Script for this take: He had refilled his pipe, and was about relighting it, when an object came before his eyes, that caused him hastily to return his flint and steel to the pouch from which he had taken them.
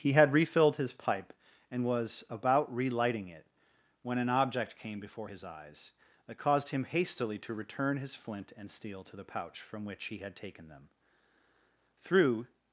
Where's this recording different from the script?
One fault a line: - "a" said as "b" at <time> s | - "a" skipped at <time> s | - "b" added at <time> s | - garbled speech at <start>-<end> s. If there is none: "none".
- "Through" added at 12.0 s